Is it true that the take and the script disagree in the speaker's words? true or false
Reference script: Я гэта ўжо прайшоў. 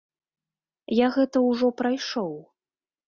false